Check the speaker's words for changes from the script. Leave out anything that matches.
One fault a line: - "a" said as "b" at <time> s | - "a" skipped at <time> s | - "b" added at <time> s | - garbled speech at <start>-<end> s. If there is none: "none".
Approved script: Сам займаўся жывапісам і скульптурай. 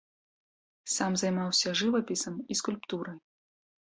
none